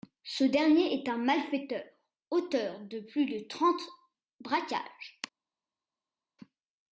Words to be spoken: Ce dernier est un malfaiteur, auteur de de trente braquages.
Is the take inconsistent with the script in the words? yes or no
yes